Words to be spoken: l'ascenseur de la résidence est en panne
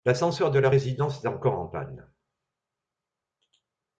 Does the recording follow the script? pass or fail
fail